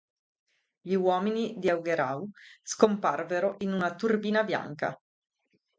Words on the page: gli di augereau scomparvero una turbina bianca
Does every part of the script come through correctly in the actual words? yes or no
no